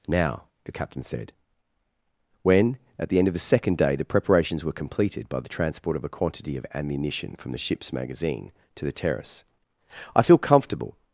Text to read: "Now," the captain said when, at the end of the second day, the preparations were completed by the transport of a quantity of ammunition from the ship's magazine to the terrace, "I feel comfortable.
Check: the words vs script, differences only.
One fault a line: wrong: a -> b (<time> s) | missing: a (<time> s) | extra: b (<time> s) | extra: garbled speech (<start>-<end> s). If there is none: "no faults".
no faults